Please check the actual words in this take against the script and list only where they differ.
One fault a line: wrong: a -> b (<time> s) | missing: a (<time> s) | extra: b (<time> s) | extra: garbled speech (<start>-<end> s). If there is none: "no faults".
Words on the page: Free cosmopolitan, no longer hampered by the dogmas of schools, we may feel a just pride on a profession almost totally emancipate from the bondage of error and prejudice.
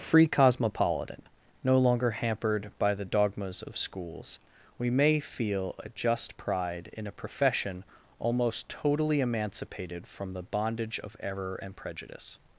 wrong: on -> in (7.0 s)
wrong: emancipate -> emancipated (9.2 s)